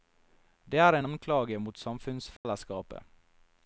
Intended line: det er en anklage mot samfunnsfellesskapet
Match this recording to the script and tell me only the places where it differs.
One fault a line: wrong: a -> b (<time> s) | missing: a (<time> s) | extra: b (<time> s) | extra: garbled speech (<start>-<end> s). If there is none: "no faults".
no faults